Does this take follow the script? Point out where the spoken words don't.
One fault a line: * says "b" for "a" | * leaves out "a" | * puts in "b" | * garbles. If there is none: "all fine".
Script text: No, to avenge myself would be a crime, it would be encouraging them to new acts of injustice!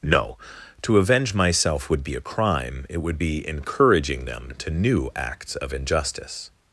all fine